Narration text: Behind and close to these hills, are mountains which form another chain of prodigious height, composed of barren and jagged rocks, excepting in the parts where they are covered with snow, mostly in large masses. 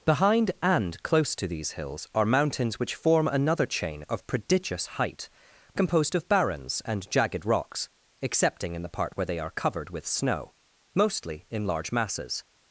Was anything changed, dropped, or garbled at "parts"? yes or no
yes